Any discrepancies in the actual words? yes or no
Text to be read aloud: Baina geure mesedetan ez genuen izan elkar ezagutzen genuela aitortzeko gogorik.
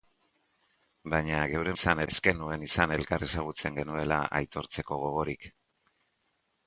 yes